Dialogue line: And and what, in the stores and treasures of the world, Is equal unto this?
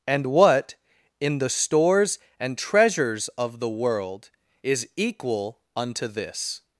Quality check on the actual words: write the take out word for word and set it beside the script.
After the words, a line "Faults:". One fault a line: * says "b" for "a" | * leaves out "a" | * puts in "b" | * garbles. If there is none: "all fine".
And what, in the stores and treasures of the world, Is equal unto this?
Faults:
* leaves out "and"